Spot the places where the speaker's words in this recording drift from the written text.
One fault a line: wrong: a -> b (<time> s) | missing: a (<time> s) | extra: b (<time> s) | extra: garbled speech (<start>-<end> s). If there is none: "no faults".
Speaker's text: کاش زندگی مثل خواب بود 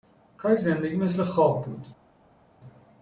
no faults